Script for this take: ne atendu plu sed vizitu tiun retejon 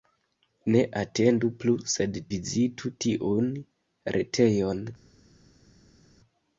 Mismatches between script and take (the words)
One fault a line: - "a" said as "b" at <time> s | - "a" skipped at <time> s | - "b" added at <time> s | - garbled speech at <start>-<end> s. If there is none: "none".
none